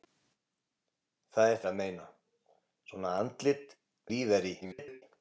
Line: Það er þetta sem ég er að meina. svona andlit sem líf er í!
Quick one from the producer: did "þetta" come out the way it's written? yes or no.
no